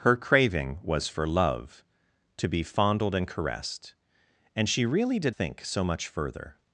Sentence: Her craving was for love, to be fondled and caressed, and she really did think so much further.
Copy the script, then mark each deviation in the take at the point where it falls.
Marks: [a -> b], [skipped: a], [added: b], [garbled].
Her craving was for love, to be fondled and caressed, and she really did think so much further.